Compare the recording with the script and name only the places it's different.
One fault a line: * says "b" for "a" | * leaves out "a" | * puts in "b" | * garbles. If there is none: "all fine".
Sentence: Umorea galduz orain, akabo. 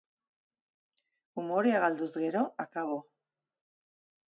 * says "gero" for "orain"